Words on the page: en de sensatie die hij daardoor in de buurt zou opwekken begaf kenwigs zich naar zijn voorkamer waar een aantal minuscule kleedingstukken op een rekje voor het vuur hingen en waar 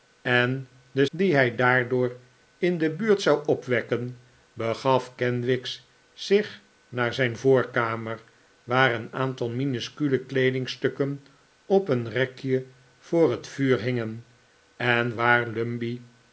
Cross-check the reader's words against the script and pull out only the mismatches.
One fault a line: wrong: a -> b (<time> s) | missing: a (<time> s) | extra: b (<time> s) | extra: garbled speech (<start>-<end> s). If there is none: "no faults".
missing: sensatie (1.1 s)